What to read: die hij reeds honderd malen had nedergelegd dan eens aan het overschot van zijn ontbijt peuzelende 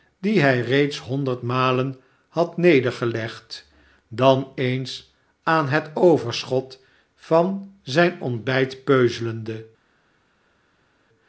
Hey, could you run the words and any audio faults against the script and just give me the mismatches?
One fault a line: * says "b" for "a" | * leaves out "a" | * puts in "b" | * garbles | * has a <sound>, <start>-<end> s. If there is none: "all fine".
all fine